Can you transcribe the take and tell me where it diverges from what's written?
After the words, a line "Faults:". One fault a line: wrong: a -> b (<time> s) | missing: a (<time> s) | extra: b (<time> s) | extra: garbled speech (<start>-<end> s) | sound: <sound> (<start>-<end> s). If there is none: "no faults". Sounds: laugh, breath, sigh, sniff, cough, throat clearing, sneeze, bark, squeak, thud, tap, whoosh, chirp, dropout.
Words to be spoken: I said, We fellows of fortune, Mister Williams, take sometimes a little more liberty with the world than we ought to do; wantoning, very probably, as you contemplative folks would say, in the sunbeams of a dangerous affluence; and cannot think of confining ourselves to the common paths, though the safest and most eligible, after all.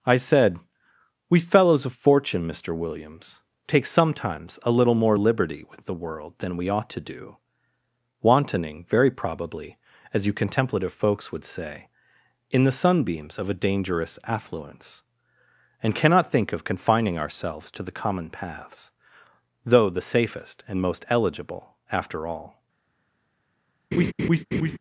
I said, We fellows of fortune, Mister Williams, take sometimes a little more liberty with the world than we ought to do; wantoning, very probably, as you contemplative folks would say, in the sunbeams of a dangerous affluence; and cannot think of confining ourselves to the common paths, though the safest and most eligible, after all.
Faults:
sound: laugh (23.9-24.8 s)